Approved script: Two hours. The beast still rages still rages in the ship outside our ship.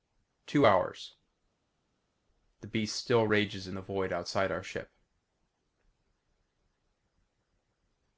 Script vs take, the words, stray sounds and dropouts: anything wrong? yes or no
yes